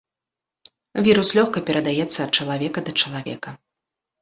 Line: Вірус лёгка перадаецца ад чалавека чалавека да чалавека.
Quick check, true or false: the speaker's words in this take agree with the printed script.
false